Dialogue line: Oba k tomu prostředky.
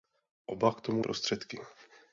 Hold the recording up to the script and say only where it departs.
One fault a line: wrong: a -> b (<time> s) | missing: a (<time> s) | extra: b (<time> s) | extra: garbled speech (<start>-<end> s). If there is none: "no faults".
no faults